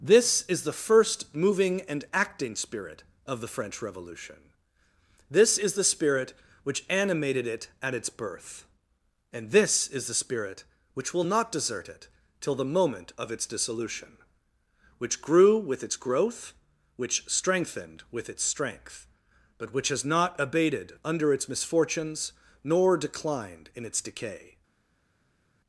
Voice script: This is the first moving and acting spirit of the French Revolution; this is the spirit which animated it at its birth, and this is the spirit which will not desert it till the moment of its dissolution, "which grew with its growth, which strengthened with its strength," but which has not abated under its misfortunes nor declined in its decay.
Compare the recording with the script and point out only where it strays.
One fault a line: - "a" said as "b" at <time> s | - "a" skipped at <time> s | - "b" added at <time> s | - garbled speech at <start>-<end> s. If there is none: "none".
none